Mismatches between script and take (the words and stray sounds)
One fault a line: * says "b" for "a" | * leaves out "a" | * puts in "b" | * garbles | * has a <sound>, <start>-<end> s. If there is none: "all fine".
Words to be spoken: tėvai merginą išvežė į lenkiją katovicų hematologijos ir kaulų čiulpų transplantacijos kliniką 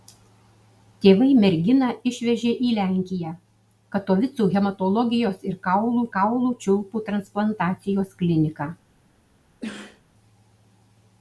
* puts in "kaulų"
* has a sneeze, 9.6-10.0 s